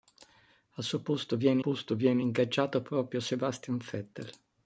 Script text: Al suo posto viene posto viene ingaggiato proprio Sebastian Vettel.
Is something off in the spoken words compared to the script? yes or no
no